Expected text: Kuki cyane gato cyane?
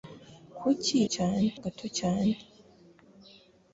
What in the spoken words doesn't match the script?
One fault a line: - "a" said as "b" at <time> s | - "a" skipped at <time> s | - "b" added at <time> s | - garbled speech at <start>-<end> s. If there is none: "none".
none